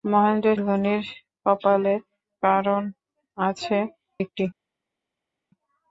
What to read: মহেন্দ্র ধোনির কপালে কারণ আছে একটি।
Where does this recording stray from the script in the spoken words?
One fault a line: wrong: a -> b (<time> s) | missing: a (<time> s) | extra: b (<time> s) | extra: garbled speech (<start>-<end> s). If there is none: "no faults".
no faults